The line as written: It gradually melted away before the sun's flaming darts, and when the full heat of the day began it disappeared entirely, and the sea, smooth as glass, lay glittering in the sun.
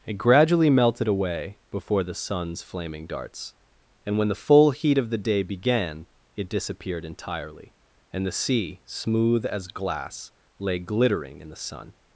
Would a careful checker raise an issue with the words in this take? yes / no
no